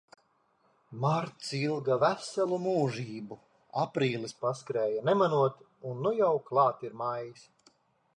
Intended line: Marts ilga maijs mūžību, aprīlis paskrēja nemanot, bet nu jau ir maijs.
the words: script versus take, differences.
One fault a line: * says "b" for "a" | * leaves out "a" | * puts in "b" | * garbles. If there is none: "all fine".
* says "veselu" for "maijs"
* says "un" for "bet"
* puts in "klāt"